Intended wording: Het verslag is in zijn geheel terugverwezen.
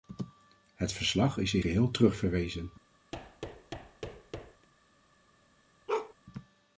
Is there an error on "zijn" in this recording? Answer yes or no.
yes